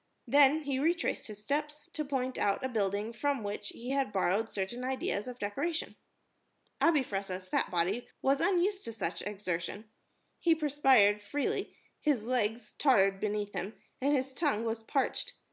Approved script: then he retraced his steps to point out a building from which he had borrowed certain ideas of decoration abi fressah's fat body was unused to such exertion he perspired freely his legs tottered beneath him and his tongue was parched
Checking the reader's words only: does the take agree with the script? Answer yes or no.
yes